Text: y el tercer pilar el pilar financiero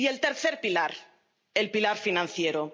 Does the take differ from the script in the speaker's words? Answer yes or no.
no